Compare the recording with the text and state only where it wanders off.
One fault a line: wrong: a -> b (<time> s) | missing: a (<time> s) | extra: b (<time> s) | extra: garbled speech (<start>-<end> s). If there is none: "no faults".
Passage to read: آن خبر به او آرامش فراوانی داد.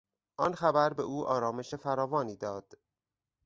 no faults